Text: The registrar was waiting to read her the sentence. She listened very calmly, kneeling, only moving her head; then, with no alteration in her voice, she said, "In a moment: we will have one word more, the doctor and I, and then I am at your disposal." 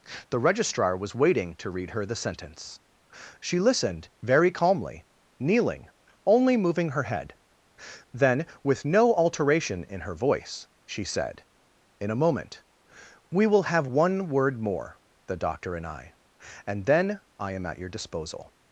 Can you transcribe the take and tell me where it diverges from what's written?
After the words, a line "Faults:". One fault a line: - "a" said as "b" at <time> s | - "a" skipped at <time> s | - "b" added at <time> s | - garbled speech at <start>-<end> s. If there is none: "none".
The registrar was waiting to read her the sentence. She listened very calmly, kneeling, only moving her head; then, with no alteration in her voice, she said, "In a moment: we will have one word more, the doctor and I, and then I am at your disposal."
Faults:
none